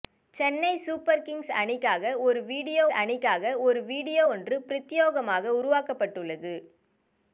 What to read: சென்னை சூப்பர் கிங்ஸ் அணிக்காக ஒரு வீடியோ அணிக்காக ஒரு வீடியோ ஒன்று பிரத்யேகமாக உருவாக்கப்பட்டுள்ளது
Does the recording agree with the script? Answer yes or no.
yes